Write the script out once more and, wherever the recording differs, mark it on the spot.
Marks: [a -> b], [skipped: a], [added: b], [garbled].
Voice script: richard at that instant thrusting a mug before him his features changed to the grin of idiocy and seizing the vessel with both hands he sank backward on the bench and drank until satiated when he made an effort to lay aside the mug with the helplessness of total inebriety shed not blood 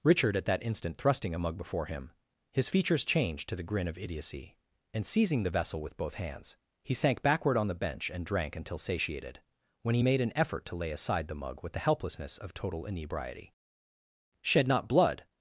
richard at that instant thrusting a mug before him his features changed to the grin of idiocy and seizing the vessel with both hands he sank backward on the bench and drank until satiated when he made an effort to lay aside the mug with the helplessness of total inebriety shed not blood